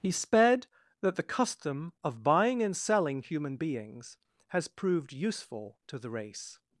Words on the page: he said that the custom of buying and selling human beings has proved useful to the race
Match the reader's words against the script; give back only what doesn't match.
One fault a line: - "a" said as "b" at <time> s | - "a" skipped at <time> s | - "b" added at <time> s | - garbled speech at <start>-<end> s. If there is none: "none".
- "said" said as "sped" at 0.1 s